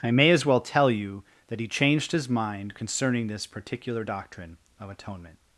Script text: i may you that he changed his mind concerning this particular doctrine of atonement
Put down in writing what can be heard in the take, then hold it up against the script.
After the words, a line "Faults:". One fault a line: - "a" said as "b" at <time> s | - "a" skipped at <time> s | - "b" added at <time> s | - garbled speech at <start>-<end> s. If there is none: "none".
i may as well tell you that he changed his mind concerning this particular doctrine of atonement
Faults:
- "as well tell" added at 0.3 s